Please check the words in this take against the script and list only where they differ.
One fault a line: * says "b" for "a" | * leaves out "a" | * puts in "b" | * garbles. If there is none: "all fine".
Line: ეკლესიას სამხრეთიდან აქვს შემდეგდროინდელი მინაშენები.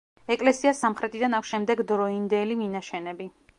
all fine